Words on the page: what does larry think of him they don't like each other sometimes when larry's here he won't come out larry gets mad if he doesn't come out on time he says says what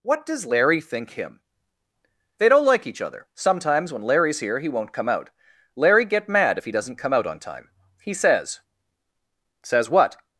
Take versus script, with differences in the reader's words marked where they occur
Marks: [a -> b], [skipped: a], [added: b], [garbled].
what does larry think [skipped: of] him they don't like each other sometimes when larry's here he won't come out larry [gets -> get] mad if he doesn't come out on time he says says what